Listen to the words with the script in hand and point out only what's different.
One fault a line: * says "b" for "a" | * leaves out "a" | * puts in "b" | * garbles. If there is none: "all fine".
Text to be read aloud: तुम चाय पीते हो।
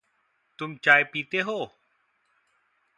all fine